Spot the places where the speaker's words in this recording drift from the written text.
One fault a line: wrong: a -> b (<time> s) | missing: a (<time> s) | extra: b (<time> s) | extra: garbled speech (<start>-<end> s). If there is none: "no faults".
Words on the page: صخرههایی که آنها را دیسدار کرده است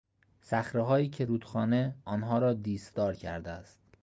extra: رودخانه (1.2 s)